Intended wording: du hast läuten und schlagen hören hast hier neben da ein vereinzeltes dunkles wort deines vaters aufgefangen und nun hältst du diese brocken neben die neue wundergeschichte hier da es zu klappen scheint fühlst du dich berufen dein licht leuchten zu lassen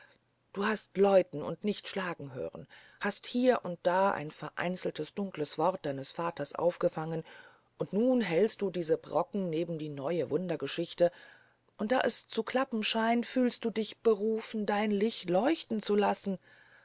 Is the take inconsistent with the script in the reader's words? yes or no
yes